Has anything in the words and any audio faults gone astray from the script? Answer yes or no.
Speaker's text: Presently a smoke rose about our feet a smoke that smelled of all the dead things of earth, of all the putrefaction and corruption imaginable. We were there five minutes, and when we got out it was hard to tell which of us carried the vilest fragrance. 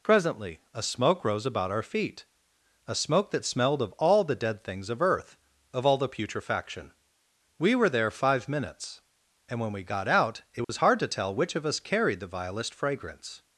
yes